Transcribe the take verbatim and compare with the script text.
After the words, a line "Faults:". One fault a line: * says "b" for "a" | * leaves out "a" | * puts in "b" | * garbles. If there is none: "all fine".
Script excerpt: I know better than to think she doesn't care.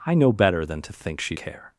I know better than to think she care.
Faults:
* leaves out "doesn't"